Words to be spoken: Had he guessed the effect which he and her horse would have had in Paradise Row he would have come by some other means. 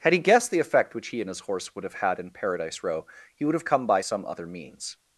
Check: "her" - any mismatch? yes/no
yes